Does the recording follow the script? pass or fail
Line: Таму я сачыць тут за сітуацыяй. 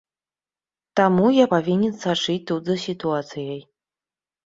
fail